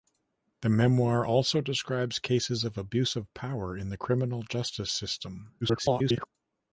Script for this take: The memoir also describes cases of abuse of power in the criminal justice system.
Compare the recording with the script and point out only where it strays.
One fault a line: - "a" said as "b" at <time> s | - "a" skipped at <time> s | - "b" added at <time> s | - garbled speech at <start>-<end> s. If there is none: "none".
- garbled speech at 5.6-6.3 s